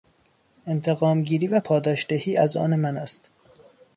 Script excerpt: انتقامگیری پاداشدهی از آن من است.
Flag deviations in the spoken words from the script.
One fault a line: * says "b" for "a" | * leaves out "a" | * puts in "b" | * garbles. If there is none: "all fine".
* puts in "و"